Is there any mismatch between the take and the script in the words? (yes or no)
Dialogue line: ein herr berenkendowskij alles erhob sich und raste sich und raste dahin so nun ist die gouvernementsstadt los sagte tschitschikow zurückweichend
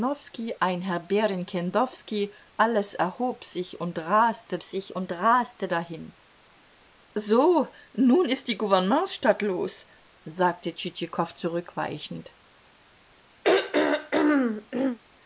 no